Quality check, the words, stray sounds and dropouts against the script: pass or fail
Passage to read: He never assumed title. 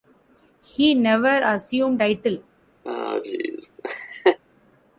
fail